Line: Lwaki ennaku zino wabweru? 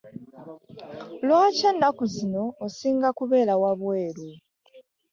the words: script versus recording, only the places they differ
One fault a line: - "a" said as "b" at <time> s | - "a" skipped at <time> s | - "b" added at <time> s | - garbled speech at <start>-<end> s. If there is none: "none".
- "osinga kubeera" added at 2.6 s